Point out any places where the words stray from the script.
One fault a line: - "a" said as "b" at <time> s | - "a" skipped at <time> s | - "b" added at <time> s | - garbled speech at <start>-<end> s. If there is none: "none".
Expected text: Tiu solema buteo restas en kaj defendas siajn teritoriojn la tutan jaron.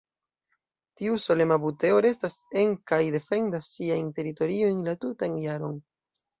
none